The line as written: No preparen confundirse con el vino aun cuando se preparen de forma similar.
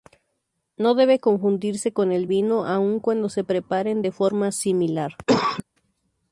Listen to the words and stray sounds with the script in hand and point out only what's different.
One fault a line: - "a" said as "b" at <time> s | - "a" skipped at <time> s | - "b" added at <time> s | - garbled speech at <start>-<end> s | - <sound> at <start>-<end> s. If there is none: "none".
- "preparen" said as "debe" at 0.9 s
- cough at 5.3-5.6 s